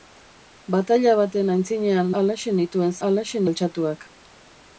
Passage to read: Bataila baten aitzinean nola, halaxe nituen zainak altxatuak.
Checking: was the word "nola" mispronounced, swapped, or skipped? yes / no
yes